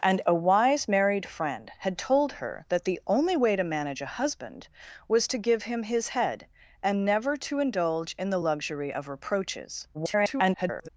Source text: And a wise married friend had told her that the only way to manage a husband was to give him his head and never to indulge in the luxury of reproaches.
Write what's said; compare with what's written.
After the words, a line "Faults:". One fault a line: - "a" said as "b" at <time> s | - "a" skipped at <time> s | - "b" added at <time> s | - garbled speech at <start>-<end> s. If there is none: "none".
And a wise married friend had told her that the only way to manage a husband was to give him his head and never to indulge in the luxury of reproaches. [garbled]
Faults:
- garbled speech at 9.9-10.9 s